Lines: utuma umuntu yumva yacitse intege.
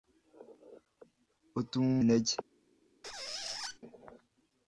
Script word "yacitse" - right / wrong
wrong